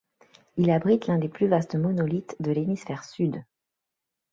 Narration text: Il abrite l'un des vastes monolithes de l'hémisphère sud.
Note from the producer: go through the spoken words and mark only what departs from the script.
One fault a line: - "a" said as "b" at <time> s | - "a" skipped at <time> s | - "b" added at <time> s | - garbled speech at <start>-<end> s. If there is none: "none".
- "plus" added at 1.3 s